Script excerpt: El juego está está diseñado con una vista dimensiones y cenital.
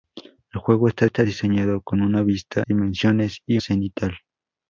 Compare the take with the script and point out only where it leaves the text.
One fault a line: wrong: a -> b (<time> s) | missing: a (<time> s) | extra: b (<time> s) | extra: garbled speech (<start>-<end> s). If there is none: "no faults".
no faults